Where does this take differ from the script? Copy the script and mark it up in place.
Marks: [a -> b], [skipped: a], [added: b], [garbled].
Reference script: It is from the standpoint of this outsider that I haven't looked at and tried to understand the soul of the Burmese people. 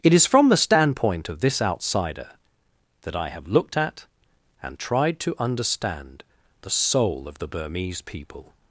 It is from the standpoint of this outsider that I [haven't -> have] looked at and tried to understand the soul of the Burmese people.